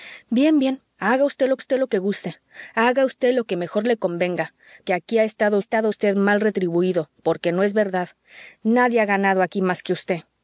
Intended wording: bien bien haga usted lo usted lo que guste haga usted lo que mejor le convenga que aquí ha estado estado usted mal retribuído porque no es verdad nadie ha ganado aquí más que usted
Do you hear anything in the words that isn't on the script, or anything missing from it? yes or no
no